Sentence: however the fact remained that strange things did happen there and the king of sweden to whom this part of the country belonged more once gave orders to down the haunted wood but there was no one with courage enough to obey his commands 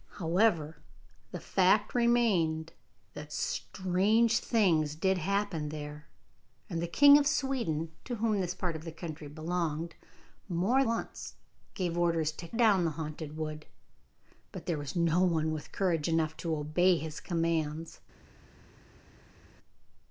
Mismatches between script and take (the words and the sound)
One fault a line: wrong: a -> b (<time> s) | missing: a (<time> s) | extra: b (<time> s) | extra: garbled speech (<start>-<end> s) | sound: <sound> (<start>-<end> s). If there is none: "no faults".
no faults